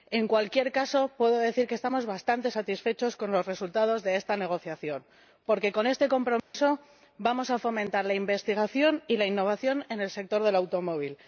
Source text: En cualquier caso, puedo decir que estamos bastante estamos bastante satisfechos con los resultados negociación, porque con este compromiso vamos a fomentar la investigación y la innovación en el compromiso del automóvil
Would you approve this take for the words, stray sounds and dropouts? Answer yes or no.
no